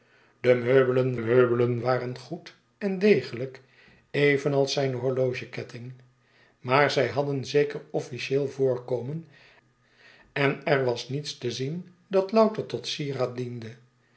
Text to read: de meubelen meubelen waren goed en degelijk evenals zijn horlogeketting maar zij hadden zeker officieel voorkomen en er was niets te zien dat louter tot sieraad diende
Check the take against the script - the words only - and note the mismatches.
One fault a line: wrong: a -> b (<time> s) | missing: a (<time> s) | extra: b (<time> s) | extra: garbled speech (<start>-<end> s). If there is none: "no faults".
no faults